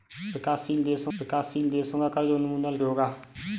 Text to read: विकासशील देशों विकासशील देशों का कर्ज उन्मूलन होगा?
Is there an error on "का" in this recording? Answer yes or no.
no